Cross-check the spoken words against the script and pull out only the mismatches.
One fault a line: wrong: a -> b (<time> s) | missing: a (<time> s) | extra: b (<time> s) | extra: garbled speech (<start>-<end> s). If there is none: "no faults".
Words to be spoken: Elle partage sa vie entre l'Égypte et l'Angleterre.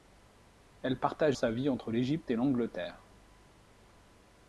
no faults